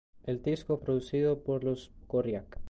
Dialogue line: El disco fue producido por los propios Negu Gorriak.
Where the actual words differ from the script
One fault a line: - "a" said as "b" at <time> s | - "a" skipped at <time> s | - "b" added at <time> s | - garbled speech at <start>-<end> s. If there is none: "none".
- "fue" skipped at 0.8 s
- "propios Negu" skipped at 1.9 s